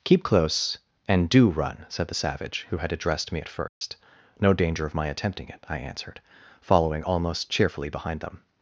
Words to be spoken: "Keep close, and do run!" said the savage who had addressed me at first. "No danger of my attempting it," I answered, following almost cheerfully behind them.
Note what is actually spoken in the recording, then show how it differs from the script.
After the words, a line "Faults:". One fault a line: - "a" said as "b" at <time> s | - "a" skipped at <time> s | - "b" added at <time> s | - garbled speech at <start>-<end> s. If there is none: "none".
"Keep close, and do run!" said the savage who had addressed me at first. "No danger of my attempting it," I answered, following almost cheerfully behind them.
Faults:
none